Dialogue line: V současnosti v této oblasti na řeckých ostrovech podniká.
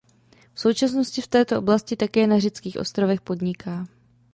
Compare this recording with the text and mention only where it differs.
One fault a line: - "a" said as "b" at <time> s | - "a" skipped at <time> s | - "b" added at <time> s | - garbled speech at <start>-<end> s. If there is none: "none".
- "také" added at 1.9 s